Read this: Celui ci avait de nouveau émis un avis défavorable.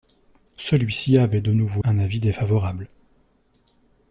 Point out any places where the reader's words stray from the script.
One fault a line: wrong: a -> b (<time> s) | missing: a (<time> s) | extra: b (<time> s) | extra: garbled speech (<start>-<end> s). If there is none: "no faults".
missing: émis (1.8 s)